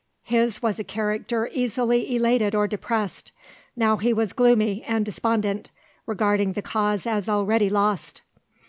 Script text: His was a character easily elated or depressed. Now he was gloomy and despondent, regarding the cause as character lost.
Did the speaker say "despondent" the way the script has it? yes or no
yes